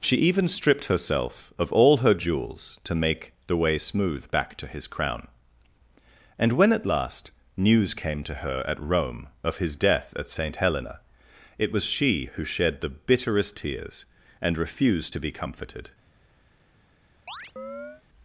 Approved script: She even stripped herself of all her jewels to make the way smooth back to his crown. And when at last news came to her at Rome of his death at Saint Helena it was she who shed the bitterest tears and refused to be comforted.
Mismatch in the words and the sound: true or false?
true